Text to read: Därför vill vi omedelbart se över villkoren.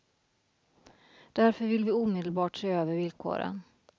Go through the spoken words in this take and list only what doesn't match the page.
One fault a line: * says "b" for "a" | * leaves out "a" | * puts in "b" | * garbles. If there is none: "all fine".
all fine